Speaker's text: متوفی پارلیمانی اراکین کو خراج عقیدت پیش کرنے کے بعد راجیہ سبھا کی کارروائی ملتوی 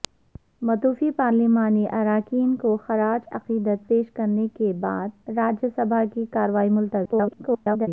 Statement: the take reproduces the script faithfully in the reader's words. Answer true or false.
false